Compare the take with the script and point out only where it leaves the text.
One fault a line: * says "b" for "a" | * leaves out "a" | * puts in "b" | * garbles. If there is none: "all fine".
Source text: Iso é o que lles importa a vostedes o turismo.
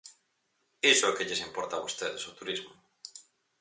all fine